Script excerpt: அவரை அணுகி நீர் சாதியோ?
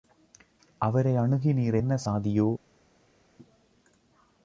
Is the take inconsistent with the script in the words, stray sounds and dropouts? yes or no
yes